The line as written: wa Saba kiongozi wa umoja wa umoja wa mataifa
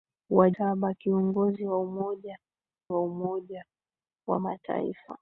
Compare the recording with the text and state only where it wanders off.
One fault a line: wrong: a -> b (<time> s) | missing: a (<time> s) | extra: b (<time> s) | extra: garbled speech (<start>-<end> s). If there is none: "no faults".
no faults